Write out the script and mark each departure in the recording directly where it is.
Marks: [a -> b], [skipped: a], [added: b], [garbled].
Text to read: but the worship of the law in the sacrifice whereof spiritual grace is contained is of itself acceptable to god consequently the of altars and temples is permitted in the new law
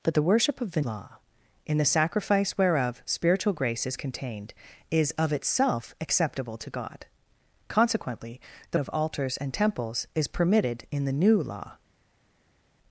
but the worship of the law in the sacrifice whereof spiritual grace is contained is of itself acceptable to god consequently the of altars and temples is permitted in the new law